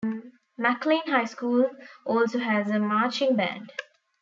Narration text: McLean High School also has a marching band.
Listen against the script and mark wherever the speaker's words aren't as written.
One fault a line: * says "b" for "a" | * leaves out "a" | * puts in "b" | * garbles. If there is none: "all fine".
all fine